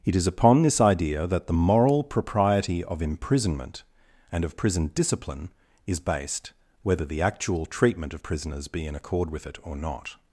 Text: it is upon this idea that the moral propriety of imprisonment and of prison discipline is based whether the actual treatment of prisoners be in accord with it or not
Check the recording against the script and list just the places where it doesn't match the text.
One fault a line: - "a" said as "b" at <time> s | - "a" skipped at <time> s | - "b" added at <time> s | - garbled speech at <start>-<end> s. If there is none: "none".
none